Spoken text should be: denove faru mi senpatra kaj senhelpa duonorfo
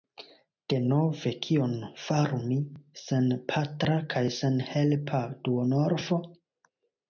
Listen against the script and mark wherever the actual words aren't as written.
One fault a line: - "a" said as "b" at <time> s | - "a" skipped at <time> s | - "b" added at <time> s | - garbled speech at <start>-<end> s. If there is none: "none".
- "kion" added at 1.5 s